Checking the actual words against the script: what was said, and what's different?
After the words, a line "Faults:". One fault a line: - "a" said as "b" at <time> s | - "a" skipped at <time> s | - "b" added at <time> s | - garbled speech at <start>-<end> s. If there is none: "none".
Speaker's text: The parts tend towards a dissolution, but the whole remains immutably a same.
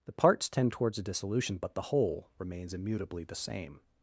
The parts tend towards a dissolution, but the whole remains immutably the same.
Faults:
- "a" said as "the" at 3.2 s